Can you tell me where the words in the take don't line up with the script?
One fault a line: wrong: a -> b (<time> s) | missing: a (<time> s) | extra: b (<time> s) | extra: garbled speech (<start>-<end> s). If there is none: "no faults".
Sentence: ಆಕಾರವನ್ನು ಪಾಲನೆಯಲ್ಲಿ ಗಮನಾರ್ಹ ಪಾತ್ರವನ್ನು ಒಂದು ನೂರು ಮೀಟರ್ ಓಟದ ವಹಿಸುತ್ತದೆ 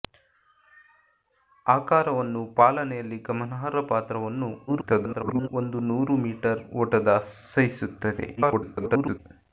extra: garbled speech (4.7-5.5 s)
extra: garbled speech (8.4-9.2 s)